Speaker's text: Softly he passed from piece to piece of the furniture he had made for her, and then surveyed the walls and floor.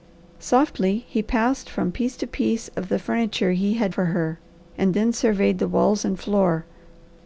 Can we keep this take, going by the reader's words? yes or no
no